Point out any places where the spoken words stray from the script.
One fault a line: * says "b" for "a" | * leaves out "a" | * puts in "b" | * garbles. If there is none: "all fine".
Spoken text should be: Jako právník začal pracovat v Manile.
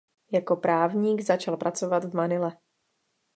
all fine